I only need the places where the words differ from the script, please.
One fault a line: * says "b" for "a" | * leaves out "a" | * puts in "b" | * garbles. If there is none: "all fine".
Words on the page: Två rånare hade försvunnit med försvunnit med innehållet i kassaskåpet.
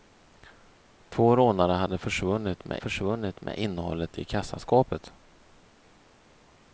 all fine